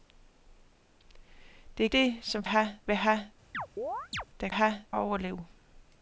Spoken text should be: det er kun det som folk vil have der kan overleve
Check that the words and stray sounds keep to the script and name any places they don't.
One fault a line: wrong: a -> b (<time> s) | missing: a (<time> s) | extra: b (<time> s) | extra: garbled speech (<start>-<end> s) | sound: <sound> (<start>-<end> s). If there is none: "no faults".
missing: kun (1.9 s)
wrong: folk -> have (2.4 s)
sound: chirp (3.5-4.2 s)
wrong: kan -> have (4.5 s)